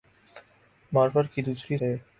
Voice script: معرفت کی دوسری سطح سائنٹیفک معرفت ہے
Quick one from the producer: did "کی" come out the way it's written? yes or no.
yes